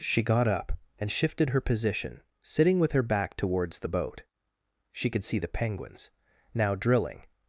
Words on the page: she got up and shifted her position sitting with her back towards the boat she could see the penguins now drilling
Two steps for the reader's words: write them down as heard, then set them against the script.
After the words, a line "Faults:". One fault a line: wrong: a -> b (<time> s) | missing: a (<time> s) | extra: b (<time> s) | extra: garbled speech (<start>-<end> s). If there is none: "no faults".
she got up and shifted her position sitting with her back towards the boat she could see the penguins now drilling
Faults:
no faults